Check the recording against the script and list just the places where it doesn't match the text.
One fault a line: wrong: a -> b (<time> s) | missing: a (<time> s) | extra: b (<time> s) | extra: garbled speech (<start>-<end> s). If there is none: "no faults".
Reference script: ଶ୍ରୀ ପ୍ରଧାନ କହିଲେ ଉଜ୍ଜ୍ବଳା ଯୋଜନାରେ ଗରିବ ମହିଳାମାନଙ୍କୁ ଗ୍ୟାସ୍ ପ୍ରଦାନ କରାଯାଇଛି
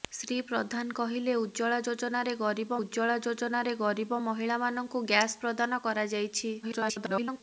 extra: ଉଜ୍ଜ୍ବଳା ଯୋଜନାରେ ଗରିବ (2.8 s)
extra: garbled speech (6.6-7.4 s)